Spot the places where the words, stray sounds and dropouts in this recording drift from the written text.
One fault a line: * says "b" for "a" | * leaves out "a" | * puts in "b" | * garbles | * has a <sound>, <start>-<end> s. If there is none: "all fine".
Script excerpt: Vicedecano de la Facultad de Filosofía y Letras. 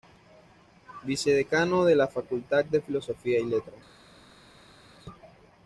all fine